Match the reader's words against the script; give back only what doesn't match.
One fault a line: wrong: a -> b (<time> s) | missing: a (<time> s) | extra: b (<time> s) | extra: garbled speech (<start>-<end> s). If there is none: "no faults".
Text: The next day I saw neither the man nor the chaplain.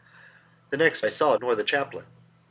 missing: day (1.0 s)
missing: neither the man (1.4 s)